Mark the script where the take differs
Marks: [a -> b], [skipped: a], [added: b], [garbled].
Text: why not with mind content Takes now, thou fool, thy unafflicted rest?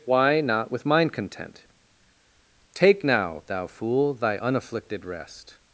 why not with mind content [Takes -> Take] now, thou fool, thy unafflicted rest?